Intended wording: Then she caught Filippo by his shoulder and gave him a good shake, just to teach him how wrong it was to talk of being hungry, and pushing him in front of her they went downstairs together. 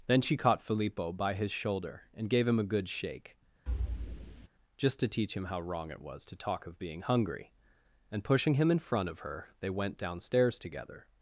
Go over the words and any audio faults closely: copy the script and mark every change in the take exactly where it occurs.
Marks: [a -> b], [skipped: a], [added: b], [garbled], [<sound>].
Then she caught Filippo by his shoulder and gave him a good shake, [thud] just to teach him how wrong it was to talk of being hungry, and pushing him in front of her they went downstairs together.